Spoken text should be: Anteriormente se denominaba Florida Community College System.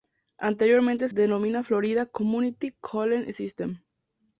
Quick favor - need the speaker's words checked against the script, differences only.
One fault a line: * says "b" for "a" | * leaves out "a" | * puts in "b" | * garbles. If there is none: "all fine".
* leaves out "se"